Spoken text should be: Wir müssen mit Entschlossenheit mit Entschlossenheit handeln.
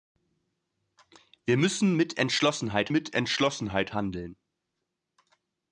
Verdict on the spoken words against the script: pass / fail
pass